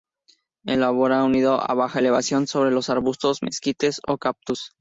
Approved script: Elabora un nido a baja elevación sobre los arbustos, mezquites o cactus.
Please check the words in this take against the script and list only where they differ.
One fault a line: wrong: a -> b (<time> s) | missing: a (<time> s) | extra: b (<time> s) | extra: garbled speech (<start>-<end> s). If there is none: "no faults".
no faults